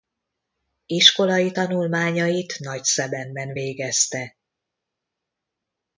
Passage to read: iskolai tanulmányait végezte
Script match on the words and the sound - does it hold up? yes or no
no